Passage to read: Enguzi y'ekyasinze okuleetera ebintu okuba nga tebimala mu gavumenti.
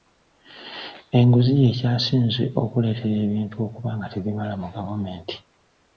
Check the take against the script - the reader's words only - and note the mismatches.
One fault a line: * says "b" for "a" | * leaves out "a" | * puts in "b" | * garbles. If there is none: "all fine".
all fine